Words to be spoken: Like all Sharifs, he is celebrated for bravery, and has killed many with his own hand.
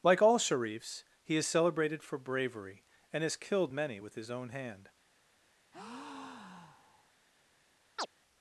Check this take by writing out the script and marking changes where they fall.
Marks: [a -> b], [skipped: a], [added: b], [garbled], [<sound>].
Like all Sharifs, he is celebrated for bravery, and has killed many with his own hand. [breath] [chirp]